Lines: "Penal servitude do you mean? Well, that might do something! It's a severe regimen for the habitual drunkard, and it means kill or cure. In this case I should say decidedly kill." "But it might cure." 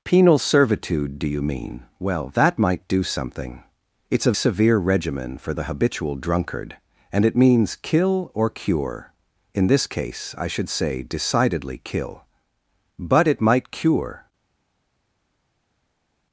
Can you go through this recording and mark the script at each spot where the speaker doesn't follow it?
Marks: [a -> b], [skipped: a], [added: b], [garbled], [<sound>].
"Penal servitude do you mean? Well, that might do something! It's a severe regimen for the habitual drunkard, and it means kill or cure. In this case I should say decidedly kill." "But it might cure."